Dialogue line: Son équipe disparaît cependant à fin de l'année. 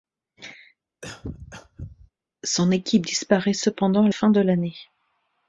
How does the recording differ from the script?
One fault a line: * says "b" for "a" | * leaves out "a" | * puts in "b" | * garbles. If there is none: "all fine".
all fine